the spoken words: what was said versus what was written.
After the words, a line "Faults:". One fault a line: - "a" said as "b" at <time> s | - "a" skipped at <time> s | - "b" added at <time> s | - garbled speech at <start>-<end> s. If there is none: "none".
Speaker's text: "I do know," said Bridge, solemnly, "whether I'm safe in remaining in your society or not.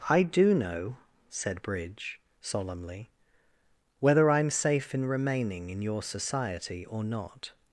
"I do know," said Bridge, solemnly, "whether I'm safe in remaining in your society or not.
Faults:
none